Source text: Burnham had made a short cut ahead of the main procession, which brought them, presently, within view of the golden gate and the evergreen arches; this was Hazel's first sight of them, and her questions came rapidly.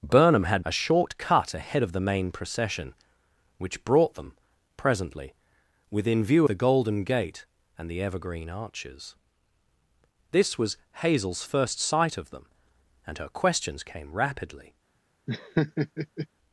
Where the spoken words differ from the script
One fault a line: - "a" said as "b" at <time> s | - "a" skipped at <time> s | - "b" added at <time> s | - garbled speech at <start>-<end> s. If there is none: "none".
- "made" skipped at 0.7 s
- "of" skipped at 6.5 s